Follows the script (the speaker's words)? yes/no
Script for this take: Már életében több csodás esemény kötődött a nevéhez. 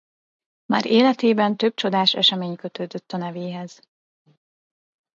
yes